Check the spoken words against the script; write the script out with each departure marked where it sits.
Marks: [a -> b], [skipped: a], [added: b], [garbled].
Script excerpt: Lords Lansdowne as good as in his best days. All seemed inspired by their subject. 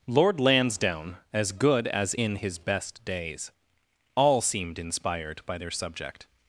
[Lords -> Lord] Lansdowne as good as in his best days. All seemed inspired by their subject.